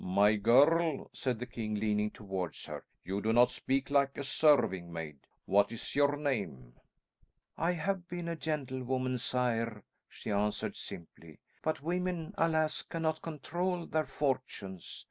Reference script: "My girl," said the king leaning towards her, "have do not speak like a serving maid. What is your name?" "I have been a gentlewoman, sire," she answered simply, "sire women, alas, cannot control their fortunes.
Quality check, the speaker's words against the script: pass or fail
fail